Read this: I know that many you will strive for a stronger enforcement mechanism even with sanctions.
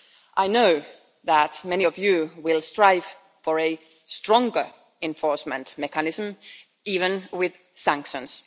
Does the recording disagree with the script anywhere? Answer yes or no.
yes